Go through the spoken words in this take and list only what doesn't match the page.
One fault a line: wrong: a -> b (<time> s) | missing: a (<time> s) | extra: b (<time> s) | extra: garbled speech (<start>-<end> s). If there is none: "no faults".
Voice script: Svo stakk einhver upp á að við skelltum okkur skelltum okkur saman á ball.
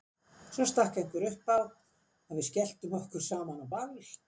missing: skelltum okkur (3.3 s)